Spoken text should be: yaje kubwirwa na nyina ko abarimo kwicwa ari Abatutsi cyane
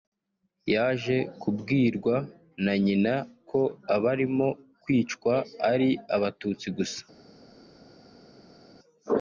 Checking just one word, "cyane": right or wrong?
wrong